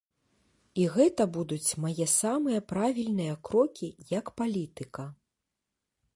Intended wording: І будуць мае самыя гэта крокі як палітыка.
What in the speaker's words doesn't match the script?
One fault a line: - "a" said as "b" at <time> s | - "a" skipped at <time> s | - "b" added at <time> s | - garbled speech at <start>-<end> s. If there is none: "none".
- "гэта" added at 0.9 s
- "гэта" said as "правільныя" at 2.7 s